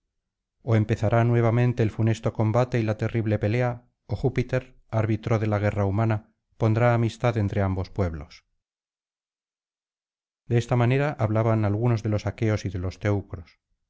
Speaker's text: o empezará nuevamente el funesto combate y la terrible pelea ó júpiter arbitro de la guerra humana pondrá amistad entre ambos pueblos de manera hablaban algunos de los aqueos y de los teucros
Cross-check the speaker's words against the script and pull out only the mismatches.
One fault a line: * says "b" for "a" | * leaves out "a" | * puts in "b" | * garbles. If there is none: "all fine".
* puts in "esta"